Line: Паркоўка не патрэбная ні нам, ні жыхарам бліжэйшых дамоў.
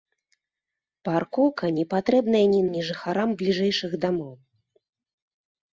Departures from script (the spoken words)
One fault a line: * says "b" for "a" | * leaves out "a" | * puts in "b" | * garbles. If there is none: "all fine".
* leaves out "нам"